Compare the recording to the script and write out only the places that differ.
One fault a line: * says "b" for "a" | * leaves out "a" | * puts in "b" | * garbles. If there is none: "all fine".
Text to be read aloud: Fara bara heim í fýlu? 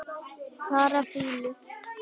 * leaves out "bara heim"